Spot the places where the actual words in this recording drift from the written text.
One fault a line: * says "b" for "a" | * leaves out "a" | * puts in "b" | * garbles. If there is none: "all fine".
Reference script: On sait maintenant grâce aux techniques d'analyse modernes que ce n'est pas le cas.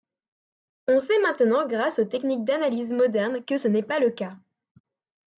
all fine